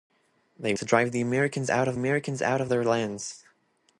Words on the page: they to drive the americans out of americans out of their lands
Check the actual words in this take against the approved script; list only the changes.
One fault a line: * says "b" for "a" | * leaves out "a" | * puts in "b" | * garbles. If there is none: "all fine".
all fine